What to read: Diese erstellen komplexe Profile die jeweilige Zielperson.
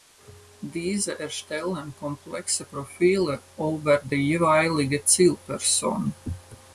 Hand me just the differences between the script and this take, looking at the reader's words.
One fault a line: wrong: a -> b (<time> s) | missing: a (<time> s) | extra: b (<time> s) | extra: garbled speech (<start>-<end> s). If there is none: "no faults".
extra: über (3.6 s)